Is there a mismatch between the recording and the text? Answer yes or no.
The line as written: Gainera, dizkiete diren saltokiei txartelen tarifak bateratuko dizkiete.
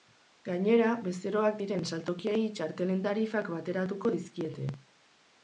yes